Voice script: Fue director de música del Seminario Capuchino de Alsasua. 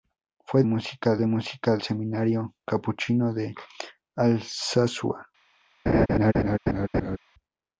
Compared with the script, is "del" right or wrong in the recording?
wrong